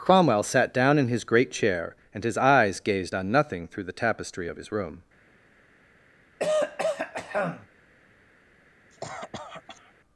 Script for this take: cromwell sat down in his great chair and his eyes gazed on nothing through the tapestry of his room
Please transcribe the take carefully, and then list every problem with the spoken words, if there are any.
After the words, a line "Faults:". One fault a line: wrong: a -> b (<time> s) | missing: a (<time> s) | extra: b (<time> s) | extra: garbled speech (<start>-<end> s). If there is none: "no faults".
cromwell sat down in his great chair and his eyes gazed on nothing through the tapestry of his room
Faults:
no faults